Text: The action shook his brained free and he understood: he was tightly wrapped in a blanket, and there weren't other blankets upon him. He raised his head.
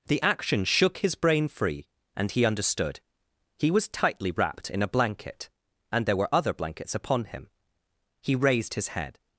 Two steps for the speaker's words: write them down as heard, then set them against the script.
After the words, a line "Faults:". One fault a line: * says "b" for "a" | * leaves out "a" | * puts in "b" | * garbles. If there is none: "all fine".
The action shook his brain free and he understood: he was tightly wrapped in a blanket, and there were other blankets upon him. He raised his head.
Faults:
* says "brain" for "brained"
* says "were" for "weren't"